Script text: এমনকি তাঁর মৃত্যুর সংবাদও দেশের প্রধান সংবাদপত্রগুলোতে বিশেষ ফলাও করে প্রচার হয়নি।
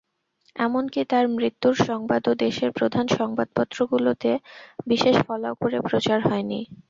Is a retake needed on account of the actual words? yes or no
no